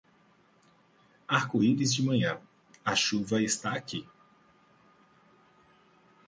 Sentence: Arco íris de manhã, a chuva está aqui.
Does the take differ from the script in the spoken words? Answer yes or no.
no